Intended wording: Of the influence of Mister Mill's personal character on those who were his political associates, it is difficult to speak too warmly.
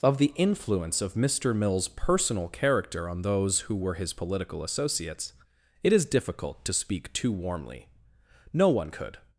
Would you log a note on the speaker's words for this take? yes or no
yes